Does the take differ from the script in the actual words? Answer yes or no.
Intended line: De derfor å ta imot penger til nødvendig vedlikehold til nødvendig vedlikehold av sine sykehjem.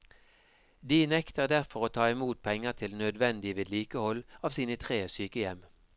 yes